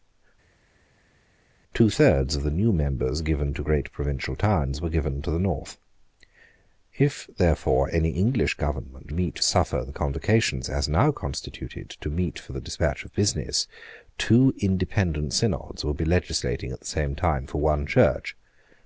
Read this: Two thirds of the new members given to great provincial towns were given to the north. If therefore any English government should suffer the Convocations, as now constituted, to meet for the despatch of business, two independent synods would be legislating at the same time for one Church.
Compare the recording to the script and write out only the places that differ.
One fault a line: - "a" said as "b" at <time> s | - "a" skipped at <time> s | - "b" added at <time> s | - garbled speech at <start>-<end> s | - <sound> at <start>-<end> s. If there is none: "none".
- "should" said as "meet" at 9.1 s